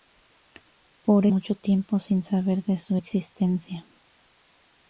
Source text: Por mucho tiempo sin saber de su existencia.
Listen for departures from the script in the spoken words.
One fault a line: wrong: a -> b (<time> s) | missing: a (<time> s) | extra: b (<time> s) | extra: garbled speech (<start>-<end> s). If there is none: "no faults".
no faults